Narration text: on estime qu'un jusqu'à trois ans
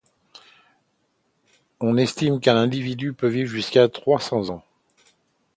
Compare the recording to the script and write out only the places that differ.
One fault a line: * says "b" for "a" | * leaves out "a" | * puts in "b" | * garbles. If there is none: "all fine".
* puts in "individu peut vivre"
* puts in "cents"